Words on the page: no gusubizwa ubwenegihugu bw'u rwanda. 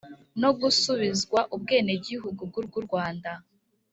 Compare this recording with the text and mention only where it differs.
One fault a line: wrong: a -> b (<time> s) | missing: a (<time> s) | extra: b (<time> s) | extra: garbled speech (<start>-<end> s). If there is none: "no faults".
extra: bw'u (2.7 s)